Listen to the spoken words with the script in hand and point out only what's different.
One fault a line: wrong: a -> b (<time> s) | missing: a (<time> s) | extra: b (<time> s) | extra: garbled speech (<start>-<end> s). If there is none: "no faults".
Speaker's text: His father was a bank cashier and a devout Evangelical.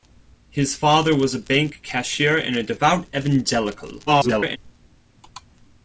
extra: garbled speech (4.1-4.6 s)